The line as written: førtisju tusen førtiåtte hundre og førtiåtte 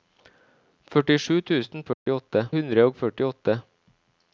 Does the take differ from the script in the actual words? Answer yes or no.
no